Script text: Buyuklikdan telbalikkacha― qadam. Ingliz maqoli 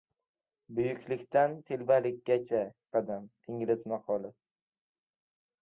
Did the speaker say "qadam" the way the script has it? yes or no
yes